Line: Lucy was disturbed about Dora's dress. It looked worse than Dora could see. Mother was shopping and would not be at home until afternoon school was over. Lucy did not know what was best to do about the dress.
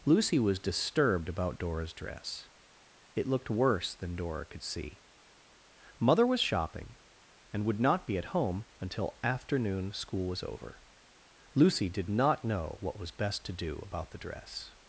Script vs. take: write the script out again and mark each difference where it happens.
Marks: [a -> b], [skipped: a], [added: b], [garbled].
Lucy was disturbed about Dora's dress. It looked worse than Dora could see. Mother was shopping and would not be at home until afternoon school was over. Lucy did not know what was best to do about the dress.